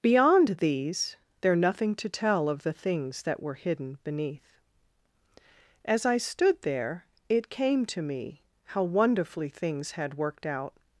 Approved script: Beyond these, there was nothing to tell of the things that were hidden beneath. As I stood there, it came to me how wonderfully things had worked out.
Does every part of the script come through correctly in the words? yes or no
no